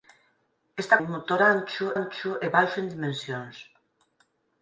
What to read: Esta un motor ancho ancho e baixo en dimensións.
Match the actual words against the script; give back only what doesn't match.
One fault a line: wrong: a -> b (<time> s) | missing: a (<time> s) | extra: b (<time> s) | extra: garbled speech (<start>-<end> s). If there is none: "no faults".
no faults